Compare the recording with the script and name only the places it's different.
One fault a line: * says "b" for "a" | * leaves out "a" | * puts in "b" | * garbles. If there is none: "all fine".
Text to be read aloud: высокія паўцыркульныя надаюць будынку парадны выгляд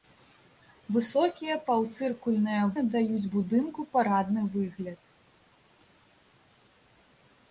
all fine